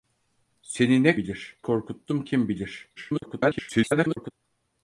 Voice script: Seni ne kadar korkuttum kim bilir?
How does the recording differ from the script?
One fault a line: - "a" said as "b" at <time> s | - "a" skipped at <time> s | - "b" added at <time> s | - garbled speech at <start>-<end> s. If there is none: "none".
- "kadar" said as "bilir" at 1.2 s
- garbled speech at 3.0-4.3 s